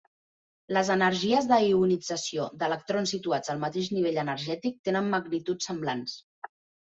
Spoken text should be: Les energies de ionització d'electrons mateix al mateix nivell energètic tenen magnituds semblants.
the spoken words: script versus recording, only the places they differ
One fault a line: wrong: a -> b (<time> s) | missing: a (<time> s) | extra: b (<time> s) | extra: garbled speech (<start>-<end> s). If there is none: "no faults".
wrong: mateix -> situats (3.1 s)